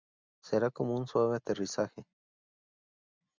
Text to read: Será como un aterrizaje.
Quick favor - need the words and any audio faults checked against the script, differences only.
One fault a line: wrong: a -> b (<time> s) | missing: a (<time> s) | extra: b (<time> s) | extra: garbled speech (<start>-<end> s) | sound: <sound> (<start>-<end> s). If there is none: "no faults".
extra: suave (1.0 s)